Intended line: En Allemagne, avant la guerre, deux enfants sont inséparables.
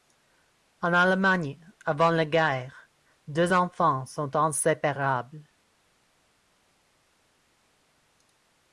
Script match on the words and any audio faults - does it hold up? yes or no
yes